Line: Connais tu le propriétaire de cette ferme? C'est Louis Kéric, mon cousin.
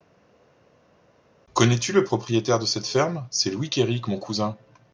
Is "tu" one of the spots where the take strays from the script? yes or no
no